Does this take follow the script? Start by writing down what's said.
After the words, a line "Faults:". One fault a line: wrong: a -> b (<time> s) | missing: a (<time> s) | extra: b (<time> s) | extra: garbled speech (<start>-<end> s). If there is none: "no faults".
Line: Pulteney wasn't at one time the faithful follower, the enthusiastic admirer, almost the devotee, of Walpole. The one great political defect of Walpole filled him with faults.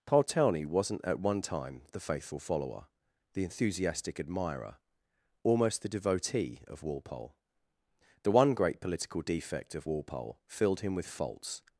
Pulteney wasn't at one time the faithful follower, the enthusiastic admirer, almost the devotee, of Walpole. The one great political defect of Walpole filled him with faults.
Faults:
no faults